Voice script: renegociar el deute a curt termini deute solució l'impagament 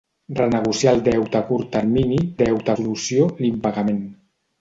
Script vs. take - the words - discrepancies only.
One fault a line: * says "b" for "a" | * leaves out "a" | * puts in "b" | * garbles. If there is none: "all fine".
all fine